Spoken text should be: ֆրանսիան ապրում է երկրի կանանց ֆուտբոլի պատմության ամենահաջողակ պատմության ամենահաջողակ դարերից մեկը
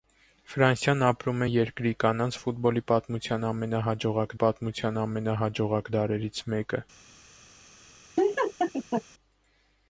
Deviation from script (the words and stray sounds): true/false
true